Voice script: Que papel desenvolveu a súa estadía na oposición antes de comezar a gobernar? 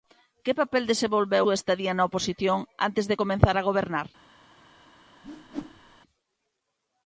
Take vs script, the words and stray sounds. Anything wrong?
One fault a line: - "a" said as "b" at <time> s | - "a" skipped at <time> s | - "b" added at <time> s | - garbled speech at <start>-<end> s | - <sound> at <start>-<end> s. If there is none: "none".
- "a" skipped at 1.4 s
- whoosh at 5.2-6.0 s